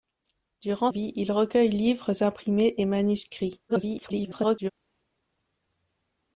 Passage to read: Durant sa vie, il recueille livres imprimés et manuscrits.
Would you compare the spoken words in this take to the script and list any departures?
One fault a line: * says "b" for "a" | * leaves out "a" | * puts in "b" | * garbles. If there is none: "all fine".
* leaves out "sa"
* garbles